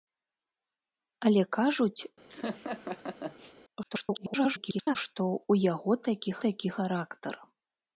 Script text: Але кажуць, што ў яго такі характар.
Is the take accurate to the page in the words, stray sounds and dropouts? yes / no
no